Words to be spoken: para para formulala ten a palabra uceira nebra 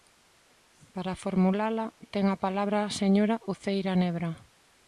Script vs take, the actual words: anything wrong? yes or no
yes